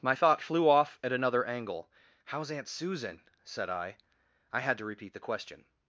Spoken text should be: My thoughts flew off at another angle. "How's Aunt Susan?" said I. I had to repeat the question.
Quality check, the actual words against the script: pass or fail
fail